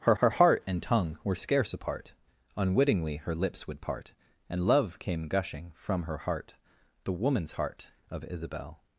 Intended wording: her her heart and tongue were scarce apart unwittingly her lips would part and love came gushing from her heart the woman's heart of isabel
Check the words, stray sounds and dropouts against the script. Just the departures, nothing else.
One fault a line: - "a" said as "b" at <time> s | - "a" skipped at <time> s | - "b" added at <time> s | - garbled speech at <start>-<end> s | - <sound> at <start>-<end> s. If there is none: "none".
none